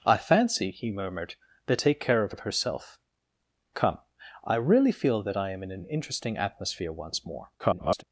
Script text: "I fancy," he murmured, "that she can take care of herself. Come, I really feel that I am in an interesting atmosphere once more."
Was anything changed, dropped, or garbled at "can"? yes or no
yes